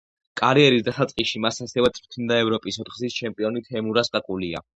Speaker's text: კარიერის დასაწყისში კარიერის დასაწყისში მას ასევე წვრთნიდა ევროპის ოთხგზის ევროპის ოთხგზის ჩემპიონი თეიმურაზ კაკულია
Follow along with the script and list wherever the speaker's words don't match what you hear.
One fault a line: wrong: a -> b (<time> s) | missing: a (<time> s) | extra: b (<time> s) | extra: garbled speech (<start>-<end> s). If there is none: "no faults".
missing: კარიერის დასაწყისში (1.4 s)
missing: ევროპის ოთხგზის (3.2 s)